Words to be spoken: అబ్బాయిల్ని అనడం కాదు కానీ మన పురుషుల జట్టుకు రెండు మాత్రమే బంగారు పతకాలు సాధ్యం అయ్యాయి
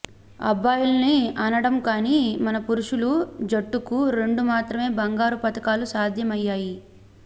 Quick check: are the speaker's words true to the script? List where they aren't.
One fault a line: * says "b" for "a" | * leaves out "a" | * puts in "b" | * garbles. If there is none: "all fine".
* leaves out "కాదు"